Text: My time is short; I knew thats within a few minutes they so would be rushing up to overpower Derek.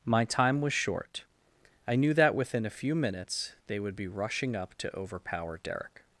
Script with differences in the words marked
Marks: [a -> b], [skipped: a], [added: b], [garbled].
My time [is -> was] short; I knew [thats -> that] within a few minutes they [skipped: so] would be rushing up to overpower Derek.